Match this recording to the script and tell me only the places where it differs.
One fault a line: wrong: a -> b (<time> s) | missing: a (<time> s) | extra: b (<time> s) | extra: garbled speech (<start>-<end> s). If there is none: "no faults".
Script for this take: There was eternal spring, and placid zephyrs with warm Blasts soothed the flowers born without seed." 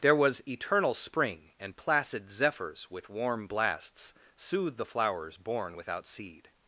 no faults